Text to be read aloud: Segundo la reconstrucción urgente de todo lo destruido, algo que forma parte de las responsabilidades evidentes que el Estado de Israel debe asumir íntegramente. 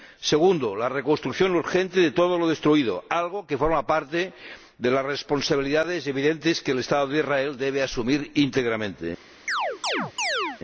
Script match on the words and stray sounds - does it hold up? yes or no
no